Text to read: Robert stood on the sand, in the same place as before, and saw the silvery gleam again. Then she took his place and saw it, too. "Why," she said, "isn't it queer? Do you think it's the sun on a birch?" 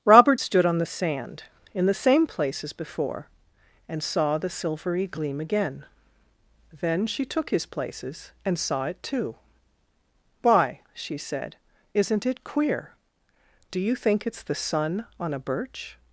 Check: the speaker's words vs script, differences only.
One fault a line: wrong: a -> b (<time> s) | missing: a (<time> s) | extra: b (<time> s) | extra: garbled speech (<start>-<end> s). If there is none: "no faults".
wrong: place -> places (7.6 s)